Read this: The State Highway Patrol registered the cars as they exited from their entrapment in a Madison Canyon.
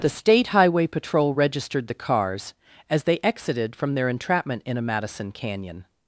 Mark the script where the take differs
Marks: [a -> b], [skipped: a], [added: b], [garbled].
The State Highway Patrol registered the cars as they exited from their entrapment in a Madison Canyon.